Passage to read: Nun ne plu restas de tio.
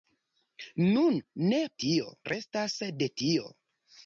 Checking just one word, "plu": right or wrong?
wrong